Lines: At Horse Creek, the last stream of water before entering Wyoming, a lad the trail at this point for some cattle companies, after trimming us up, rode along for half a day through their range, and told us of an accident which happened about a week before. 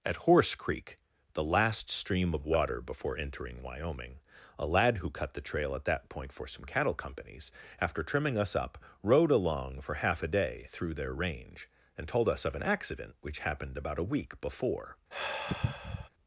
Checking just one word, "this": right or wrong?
wrong